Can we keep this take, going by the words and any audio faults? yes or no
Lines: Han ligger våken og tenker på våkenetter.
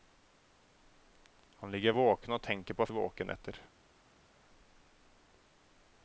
yes